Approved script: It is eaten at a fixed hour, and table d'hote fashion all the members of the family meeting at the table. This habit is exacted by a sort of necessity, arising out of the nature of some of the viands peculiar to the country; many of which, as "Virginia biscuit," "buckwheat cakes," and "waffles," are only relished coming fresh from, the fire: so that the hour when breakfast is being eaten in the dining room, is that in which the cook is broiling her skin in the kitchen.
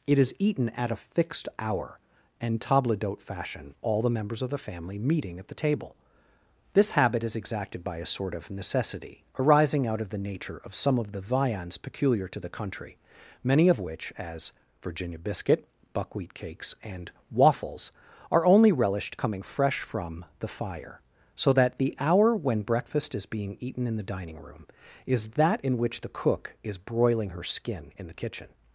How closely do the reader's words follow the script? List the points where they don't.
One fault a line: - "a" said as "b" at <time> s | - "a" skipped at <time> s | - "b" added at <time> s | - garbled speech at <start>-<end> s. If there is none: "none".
none